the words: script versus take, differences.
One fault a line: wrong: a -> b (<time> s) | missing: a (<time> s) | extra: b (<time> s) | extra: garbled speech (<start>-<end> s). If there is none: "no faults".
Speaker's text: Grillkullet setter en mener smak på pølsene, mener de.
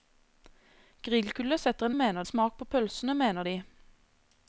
no faults